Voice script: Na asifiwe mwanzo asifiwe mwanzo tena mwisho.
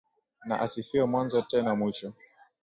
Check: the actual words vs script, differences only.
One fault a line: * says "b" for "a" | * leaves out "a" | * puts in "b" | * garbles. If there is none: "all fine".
* leaves out "asifiwe mwanzo"